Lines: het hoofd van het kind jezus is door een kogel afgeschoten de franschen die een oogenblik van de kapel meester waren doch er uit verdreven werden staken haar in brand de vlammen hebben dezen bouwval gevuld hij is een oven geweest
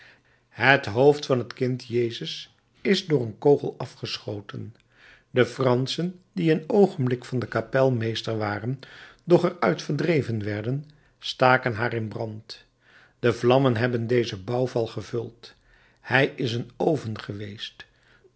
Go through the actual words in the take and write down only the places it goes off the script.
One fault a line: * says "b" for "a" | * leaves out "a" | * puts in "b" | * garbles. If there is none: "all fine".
all fine